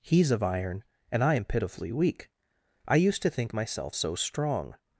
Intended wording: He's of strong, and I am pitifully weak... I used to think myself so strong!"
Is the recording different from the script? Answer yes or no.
yes